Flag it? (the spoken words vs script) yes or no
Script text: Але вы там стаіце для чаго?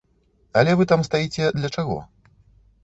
no